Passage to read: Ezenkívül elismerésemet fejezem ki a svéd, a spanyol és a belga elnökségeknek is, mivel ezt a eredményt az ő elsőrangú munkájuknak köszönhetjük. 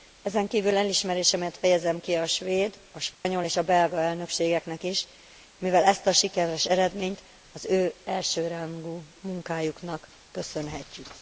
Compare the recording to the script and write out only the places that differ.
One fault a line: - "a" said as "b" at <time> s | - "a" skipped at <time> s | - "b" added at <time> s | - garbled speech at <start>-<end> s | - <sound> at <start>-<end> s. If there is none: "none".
- dropout at 3.1-3.2 s
- "sikeres" added at 6.1 s